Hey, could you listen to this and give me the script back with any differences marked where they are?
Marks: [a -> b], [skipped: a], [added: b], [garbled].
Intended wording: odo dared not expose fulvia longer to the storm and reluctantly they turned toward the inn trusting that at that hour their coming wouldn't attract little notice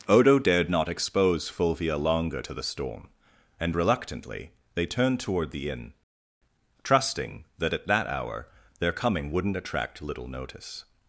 odo dared not expose fulvia longer to the storm and reluctantly they turned toward the inn trusting that at that hour their coming wouldn't attract little notice